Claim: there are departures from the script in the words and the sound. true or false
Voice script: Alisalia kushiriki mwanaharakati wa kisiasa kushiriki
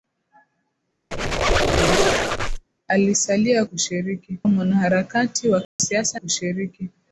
true